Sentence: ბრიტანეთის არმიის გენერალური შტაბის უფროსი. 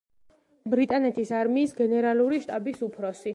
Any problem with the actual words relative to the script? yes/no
no